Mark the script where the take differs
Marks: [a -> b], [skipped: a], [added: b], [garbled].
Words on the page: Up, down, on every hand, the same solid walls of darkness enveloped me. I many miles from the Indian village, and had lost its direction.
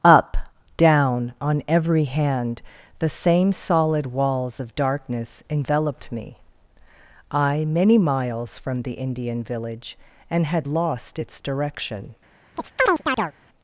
Up, down, on every hand, the same solid walls of darkness enveloped me. I many miles from the Indian village, and had lost its direction.